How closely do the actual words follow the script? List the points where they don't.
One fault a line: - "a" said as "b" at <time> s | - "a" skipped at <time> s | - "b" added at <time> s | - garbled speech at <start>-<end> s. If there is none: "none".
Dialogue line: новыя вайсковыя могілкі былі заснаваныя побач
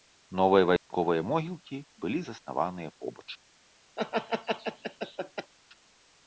none